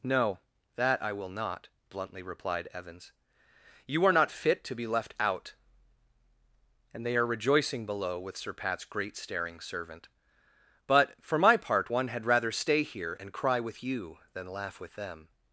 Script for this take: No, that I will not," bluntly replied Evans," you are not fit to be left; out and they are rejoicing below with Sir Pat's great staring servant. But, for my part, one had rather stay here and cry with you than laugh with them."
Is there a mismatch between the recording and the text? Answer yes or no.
no